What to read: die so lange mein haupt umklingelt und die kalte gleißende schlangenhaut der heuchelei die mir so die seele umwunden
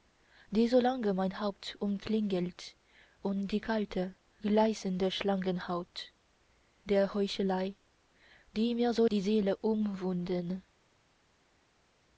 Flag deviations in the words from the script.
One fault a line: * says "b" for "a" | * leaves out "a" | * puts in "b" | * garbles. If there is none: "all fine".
all fine